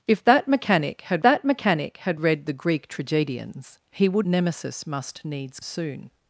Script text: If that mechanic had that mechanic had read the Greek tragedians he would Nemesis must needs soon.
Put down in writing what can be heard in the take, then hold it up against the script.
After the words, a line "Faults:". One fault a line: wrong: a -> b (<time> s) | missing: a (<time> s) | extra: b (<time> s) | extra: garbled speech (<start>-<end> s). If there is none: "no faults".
If that mechanic had that mechanic had read the Greek tragedians he would Nemesis must needs soon.
Faults:
no faults